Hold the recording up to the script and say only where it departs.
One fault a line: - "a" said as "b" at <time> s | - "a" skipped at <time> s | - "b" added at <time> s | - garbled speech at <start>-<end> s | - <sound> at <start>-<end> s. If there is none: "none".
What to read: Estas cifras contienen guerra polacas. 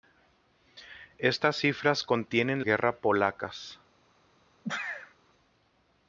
- sneeze at 4.6-5.1 s